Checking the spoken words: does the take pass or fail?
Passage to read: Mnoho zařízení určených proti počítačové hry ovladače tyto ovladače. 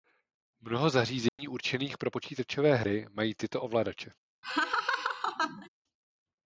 fail